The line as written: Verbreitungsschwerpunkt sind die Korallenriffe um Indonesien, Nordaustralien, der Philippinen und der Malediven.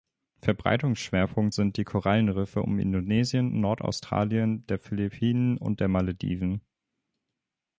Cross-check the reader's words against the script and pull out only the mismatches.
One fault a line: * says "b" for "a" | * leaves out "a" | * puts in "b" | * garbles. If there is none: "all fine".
all fine